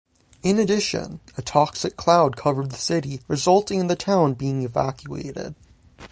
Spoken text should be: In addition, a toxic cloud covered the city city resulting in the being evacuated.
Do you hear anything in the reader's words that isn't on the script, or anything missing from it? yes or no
yes